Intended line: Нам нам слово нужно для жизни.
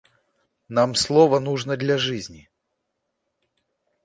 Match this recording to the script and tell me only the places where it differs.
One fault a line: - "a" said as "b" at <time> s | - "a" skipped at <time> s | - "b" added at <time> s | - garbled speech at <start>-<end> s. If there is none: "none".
- "нам" skipped at 0.9 s